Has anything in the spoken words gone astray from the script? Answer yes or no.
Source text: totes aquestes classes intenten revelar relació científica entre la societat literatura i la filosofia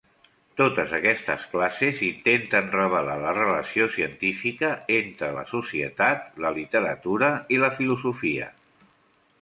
yes